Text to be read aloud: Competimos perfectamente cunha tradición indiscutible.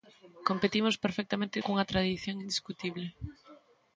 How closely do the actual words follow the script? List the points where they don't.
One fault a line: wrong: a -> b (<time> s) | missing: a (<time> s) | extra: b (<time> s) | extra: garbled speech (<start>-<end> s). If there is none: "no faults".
no faults